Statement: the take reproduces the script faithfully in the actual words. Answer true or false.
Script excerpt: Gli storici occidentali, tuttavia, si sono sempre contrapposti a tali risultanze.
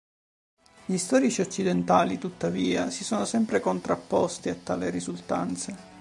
true